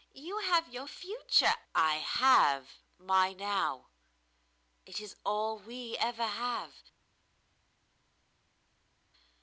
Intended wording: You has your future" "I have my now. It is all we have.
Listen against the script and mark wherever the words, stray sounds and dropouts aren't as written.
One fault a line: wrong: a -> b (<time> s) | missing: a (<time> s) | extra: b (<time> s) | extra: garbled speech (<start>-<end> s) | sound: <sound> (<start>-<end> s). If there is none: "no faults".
wrong: has -> have (0.4 s)
extra: ever (6.0 s)